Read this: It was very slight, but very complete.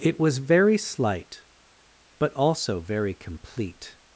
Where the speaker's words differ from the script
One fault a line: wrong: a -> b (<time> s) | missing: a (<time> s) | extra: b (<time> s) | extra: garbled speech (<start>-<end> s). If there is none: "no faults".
extra: also (2.3 s)